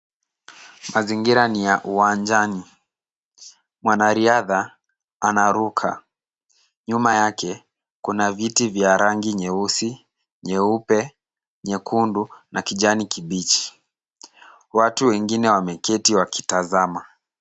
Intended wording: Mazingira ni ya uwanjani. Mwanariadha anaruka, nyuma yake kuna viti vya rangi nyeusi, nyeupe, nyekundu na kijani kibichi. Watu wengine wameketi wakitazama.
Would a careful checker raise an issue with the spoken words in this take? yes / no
no